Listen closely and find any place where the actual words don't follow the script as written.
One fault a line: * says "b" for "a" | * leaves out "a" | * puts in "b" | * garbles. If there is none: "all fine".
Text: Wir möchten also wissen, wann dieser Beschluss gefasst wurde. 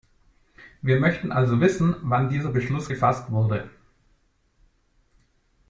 all fine